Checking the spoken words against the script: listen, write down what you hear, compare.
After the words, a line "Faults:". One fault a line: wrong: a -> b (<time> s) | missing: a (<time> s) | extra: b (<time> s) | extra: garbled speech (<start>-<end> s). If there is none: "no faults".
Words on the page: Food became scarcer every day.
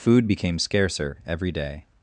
Food became scarcer every day.
Faults:
no faults